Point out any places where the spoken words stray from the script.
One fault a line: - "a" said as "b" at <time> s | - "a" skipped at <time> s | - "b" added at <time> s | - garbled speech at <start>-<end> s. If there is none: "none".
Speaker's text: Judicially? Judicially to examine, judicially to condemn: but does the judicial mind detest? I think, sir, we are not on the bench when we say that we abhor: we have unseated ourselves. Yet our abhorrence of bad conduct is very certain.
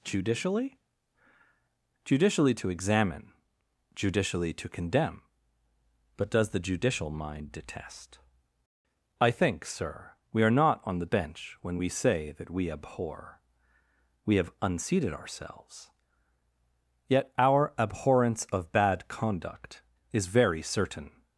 none